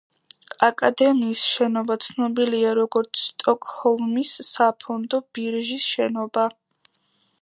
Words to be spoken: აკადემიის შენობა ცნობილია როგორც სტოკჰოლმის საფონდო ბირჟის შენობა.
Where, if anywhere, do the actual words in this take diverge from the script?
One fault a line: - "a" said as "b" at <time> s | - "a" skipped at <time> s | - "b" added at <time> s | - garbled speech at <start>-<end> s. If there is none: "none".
none